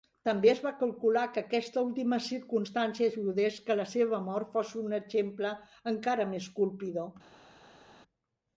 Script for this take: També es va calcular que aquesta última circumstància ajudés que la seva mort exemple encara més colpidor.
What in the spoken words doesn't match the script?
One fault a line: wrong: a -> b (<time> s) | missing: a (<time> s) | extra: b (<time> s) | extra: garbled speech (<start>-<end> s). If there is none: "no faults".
extra: fos un (4.5 s)